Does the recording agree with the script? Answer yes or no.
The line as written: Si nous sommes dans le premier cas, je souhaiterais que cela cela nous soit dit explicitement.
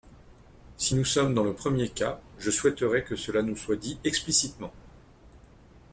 no